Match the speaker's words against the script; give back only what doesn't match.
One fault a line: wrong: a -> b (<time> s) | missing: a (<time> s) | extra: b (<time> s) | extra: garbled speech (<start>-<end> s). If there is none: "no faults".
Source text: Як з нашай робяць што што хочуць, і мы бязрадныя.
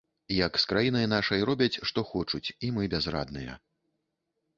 extra: краінай (0.7 s)
missing: што (2.0 s)